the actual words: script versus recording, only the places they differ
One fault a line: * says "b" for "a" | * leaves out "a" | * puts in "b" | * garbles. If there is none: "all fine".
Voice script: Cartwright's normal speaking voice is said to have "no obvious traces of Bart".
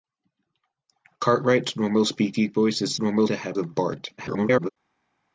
* says "normal" for "said"
* leaves out "no obvious traces"
* garbles